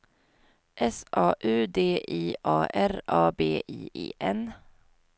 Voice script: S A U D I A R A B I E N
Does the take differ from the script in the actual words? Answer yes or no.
no